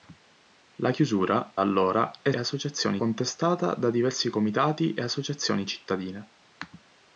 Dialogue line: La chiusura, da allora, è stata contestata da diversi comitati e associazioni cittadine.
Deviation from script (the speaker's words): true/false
true